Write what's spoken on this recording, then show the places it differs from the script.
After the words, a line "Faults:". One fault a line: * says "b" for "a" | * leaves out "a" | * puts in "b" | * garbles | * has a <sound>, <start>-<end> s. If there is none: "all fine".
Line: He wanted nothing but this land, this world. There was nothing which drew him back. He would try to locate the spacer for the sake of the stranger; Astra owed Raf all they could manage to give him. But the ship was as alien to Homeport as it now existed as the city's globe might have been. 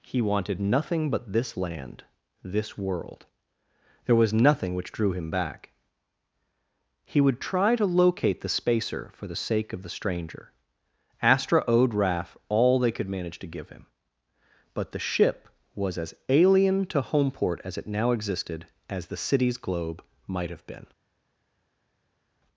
He wanted nothing but this land, this world. There was nothing which drew him back. He would try to locate the spacer for the sake of the stranger; Astra owed Raf all they could manage to give him. But the ship was as alien to Homeport as it now existed as the city's globe might have been.
Faults:
all fine